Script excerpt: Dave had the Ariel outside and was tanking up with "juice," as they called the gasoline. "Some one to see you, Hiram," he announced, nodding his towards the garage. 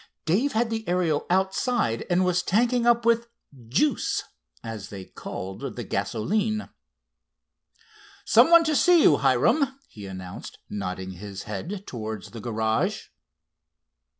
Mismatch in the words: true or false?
true